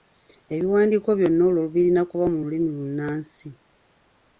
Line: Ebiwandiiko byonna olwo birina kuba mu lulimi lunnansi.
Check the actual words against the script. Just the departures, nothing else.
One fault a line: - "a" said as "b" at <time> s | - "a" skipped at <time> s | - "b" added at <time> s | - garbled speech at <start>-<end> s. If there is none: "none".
none